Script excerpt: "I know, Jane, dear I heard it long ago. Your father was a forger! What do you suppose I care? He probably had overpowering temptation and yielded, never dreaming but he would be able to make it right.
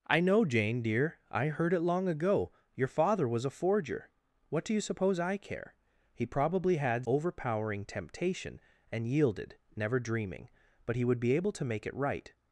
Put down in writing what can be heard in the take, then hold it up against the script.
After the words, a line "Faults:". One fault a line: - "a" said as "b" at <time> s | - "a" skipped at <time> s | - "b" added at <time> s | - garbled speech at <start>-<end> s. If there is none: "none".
"I know, Jane, dear I heard it long ago. Your father was a forger! What do you suppose I care? He probably had overpowering temptation and yielded, never dreaming but he would be able to make it right.
Faults:
none